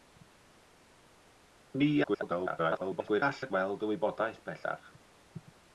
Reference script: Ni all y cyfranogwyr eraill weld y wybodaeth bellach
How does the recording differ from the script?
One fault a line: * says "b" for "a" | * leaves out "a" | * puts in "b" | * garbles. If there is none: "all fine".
* garbles
* leaves out "cyfranogwyr eraill"